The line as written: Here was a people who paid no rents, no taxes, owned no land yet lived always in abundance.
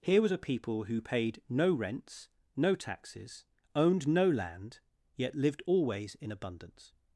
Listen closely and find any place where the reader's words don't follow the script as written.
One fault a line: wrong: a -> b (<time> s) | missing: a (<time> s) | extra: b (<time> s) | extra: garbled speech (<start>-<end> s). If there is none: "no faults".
no faults